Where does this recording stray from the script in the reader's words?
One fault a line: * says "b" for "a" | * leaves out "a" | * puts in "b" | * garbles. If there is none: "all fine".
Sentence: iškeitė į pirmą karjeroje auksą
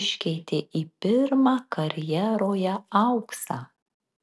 all fine